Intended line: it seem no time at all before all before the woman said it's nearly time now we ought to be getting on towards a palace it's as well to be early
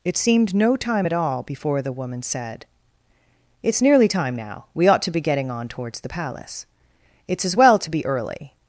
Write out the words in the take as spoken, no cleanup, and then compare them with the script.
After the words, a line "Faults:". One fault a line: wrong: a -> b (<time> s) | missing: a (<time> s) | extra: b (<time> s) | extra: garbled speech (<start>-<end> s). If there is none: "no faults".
it seemed no time at all before the woman said it's nearly time now we ought to be getting on towards the palace it's as well to be early
Faults:
wrong: seem -> seemed (0.2 s)
missing: all before (1.8 s)
wrong: a -> the (6.0 s)